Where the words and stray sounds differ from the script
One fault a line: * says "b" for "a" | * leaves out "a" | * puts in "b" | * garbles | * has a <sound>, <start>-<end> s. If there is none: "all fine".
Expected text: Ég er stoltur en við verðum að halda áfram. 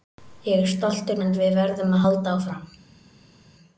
all fine